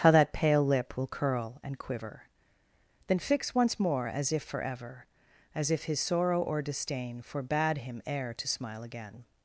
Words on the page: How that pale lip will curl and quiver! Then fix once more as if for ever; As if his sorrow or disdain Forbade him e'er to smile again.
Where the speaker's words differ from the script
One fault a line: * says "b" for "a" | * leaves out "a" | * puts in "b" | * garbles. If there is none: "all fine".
all fine